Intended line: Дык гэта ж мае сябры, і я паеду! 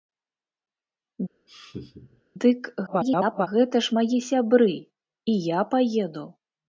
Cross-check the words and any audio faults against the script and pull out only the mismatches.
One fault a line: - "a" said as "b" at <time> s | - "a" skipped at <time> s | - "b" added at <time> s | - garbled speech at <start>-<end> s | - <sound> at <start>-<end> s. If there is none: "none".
- laugh at 1.5-2.2 s
- garbled speech at 2.9-3.5 s